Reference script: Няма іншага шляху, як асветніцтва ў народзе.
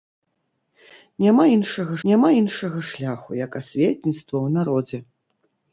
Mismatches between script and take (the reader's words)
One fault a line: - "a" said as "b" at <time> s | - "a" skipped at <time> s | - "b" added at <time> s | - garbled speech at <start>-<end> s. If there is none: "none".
- "няма іншага" added at 2.1 s